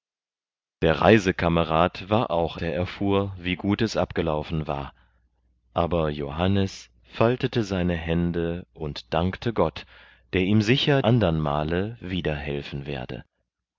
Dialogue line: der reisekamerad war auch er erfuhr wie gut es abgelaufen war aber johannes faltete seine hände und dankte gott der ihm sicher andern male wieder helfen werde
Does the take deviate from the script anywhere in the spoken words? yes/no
no